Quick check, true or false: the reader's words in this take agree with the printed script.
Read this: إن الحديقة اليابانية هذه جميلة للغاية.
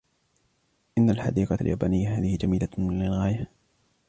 true